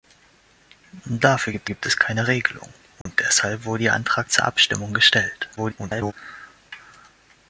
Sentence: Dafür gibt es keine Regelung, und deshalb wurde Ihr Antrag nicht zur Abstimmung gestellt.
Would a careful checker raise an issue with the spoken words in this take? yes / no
yes